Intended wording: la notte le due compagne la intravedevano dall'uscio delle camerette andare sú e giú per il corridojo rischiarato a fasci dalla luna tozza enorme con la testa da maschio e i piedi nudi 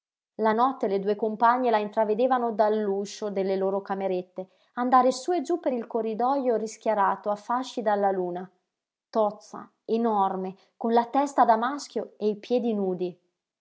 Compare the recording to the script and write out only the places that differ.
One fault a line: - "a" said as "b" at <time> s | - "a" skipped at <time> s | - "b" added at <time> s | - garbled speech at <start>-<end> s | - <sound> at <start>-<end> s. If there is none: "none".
- "loro" added at 3.6 s